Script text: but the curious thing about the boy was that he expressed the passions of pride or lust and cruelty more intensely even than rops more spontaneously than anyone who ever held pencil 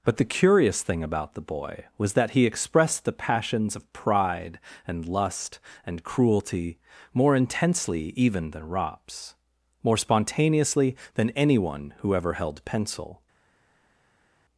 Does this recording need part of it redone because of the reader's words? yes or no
yes